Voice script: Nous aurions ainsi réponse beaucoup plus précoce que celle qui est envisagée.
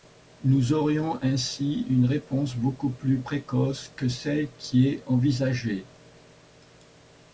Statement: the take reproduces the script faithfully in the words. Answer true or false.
false